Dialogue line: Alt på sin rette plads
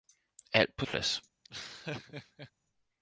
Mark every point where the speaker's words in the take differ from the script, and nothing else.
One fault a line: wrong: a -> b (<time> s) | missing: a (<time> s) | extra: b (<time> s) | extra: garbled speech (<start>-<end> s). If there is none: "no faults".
missing: sin rette (0.8 s)